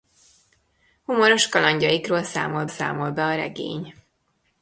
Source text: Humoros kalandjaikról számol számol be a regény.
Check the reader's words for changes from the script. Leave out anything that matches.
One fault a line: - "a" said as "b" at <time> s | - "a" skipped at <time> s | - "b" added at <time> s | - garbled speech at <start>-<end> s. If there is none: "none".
none